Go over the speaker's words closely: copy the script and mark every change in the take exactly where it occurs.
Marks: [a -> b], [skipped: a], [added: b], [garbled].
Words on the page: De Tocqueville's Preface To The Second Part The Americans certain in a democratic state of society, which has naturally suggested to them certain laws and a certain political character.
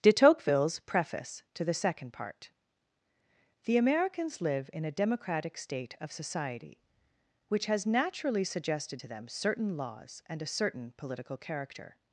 De Tocqueville's Preface To The Second Part The Americans [certain -> live] in a democratic state of society, which has naturally suggested to them certain laws and a certain political character.